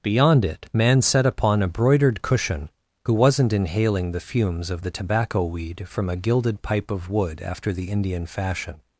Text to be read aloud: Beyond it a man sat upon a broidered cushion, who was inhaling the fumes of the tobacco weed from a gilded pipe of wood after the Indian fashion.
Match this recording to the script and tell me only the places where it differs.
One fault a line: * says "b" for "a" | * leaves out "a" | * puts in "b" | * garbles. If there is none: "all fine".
* leaves out "a"
* says "wasn't" for "was"